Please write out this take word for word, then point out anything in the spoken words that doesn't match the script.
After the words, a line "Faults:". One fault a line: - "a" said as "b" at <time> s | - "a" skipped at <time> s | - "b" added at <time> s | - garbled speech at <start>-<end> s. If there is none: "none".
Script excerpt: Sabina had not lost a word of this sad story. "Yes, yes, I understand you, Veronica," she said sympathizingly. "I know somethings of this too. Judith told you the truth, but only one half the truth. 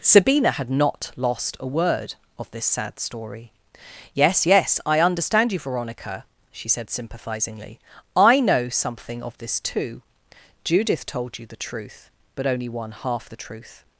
Sabina had not lost a word of this sad story. "Yes, yes, I understand you, Veronica," she said sympathizingly. "I know something of this too. Judith told you the truth, but only one half the truth.
Faults:
- "somethings" said as "something" at 8.7 s